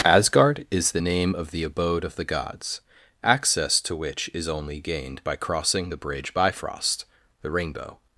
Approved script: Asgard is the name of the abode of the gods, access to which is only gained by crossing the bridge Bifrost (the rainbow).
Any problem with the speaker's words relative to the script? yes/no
no